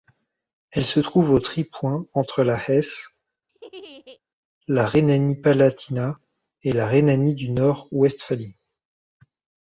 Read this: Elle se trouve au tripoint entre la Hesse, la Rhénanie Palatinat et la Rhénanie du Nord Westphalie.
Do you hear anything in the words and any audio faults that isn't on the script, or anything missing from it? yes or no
yes